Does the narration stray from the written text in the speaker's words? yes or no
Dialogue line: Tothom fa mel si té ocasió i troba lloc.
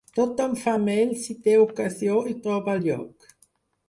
no